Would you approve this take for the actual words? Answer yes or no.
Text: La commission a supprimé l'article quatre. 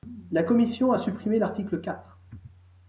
yes